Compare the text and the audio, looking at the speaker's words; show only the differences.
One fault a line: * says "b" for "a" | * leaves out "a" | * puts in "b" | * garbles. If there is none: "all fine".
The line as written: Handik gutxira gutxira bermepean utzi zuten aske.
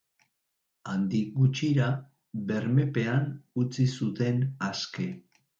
* leaves out "gutxira"